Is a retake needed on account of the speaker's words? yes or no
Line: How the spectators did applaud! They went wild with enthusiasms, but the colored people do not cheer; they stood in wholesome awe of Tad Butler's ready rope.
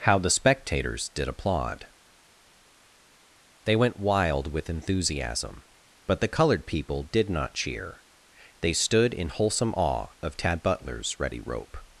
yes